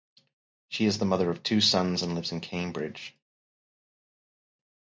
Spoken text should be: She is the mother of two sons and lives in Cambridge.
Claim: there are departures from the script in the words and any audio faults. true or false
false